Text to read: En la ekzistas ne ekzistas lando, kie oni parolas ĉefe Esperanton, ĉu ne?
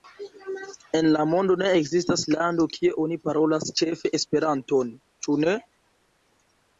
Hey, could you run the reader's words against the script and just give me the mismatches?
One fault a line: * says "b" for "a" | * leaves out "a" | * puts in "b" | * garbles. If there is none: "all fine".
* says "mondo" for "ekzistas"